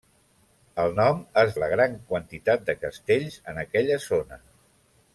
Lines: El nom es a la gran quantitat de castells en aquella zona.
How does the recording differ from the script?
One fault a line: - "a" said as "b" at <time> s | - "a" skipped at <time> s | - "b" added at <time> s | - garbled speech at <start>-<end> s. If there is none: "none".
none